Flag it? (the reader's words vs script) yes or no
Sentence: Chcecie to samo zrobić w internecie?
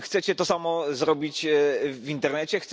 no